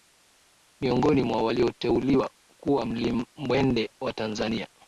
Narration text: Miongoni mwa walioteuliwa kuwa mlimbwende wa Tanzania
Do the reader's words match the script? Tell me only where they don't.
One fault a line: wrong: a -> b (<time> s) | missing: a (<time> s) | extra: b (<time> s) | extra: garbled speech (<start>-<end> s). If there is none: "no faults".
no faults